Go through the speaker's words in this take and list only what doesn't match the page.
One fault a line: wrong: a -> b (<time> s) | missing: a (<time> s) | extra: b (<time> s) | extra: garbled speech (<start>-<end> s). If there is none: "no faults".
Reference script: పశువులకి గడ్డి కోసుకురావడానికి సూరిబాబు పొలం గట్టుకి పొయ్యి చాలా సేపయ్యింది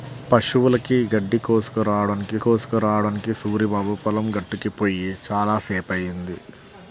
extra: కోసుకురావడానికి (2.4 s)